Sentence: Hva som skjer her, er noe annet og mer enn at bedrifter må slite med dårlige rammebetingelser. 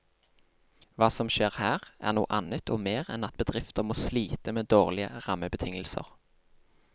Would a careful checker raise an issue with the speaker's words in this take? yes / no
no